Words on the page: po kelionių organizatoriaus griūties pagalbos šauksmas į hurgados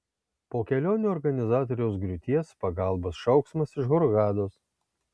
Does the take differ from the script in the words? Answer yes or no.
yes